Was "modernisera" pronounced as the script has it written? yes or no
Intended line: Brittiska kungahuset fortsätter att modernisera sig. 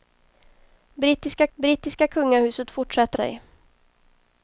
no